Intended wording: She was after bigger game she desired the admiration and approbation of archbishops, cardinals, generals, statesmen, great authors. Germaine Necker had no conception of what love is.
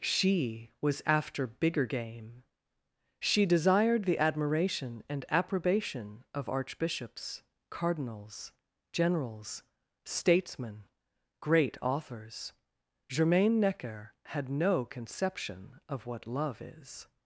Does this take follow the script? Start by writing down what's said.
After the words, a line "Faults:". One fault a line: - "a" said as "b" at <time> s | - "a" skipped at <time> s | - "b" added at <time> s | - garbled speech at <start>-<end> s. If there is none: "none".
She was after bigger game she desired the admiration and approbation of archbishops, cardinals, generals, statesmen, great authors. Germaine Necker had no conception of what love is.
Faults:
none